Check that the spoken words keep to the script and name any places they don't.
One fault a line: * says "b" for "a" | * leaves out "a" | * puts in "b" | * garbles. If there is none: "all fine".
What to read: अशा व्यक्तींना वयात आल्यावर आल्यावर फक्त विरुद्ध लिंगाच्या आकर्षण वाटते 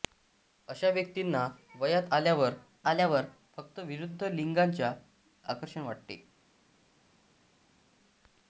all fine